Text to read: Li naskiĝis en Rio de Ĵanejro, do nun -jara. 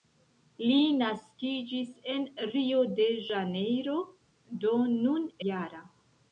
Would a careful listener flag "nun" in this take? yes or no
no